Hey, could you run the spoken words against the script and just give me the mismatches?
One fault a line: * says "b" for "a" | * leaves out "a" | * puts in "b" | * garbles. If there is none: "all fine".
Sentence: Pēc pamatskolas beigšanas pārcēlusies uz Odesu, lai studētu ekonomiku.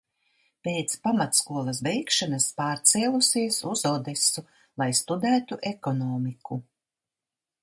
all fine